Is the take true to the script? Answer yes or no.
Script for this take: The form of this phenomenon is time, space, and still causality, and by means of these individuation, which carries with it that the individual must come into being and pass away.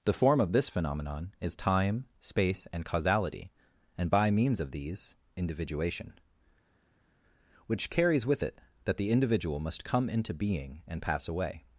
no